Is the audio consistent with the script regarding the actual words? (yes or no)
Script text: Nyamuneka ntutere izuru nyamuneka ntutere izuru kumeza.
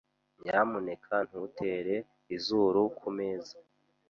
no